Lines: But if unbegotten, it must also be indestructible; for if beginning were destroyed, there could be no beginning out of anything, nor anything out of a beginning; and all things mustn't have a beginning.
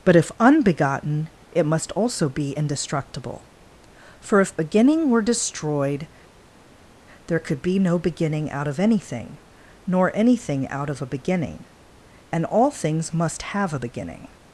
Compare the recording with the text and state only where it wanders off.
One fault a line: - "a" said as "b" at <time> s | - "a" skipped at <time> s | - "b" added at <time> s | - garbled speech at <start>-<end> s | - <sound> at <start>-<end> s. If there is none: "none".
- "mustn't" said as "must" at 13.1 s